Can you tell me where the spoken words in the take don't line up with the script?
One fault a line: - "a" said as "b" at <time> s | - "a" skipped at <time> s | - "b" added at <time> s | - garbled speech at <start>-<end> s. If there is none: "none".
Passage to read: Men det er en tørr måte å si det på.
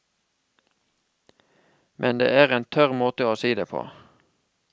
none